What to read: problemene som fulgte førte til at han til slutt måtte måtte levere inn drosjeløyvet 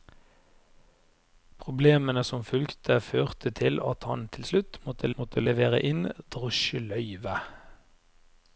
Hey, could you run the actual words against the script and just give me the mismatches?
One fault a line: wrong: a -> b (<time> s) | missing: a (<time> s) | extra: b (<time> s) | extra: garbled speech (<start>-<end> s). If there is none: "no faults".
no faults